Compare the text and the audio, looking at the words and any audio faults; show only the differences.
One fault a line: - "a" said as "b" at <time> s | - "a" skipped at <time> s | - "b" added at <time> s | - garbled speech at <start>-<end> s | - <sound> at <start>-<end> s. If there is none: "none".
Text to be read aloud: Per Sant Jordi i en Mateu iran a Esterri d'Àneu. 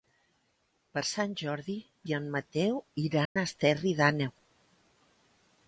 - dropout at 3.3-3.4 s